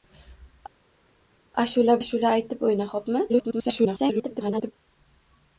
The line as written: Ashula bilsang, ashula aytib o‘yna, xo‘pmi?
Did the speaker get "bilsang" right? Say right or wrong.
wrong